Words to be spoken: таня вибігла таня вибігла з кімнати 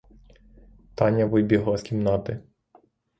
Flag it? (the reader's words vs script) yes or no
yes